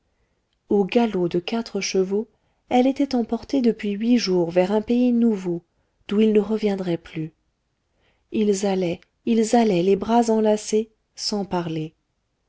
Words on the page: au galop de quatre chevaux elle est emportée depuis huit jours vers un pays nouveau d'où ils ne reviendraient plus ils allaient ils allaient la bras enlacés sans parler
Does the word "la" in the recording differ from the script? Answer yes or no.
yes